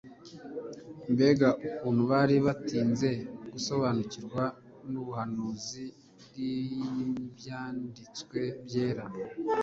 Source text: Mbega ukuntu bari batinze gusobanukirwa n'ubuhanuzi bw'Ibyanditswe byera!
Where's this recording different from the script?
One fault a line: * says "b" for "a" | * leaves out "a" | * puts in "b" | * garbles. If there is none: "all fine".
all fine